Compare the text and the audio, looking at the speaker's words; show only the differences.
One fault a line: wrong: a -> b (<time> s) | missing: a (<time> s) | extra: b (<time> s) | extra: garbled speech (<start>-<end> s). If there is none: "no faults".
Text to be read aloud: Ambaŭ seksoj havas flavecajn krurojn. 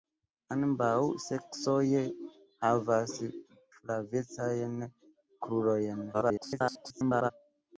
extra: garbled speech (6.1-7.3 s)